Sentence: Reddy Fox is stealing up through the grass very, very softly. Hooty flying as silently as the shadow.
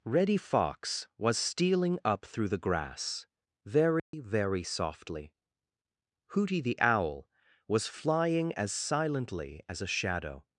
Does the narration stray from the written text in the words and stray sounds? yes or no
yes